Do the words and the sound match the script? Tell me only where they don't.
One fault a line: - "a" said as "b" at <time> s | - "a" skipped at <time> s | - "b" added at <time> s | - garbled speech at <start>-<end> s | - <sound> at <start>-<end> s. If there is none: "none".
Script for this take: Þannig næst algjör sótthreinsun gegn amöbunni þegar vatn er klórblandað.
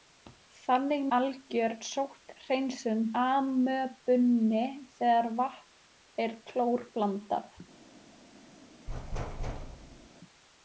- "næst" skipped at 1.0 s
- "gegn" skipped at 3.0 s
- thud at 8.9-10.1 s